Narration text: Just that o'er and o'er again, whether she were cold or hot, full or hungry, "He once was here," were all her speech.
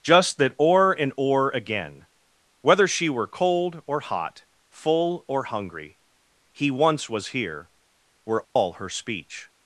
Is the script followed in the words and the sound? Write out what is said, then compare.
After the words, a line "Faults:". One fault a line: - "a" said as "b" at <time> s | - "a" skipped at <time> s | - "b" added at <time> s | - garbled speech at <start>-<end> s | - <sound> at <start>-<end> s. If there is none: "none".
Just that o'er and o'er again, whether she were cold or hot, full or hungry, "He once was here," were all her speech.
Faults:
- dropout at 8.4-8.6 s